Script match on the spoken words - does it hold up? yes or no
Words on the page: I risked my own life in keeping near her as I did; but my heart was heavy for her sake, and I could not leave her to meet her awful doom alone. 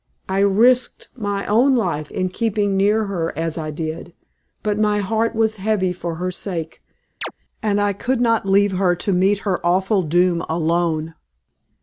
yes